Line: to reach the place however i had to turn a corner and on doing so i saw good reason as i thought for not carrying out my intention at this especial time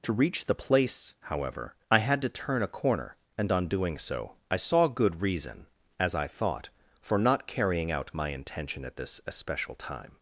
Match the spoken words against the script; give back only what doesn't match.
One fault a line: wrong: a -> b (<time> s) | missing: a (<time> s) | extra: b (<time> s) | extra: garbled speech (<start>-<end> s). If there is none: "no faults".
no faults